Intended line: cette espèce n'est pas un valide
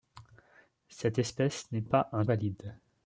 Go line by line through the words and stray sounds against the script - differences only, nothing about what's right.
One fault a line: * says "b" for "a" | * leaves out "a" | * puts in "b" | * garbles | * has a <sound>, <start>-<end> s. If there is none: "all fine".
all fine